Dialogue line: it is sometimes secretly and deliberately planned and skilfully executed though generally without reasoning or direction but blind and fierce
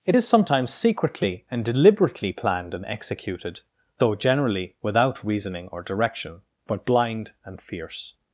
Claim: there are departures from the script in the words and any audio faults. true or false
true